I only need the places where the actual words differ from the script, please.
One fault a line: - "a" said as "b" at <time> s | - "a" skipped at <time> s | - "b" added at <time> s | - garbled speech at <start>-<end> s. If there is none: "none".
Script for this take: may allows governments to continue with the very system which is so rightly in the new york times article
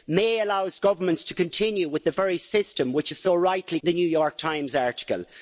none